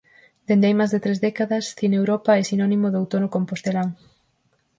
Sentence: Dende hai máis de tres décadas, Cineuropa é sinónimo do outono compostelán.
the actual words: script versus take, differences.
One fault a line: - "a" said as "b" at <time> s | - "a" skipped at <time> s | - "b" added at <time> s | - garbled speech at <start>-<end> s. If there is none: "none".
none